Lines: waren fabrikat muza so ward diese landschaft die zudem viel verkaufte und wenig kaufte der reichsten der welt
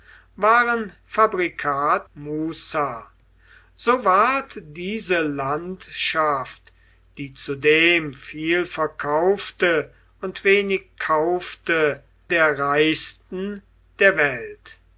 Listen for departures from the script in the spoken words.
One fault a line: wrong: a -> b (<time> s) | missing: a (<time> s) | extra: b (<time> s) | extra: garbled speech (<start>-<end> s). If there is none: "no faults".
no faults